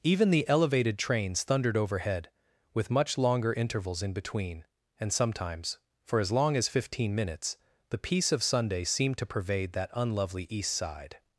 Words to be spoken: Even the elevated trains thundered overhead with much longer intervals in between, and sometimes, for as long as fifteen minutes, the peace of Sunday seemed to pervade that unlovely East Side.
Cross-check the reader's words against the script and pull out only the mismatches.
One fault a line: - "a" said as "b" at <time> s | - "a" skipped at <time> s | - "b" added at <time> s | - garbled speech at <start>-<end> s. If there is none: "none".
none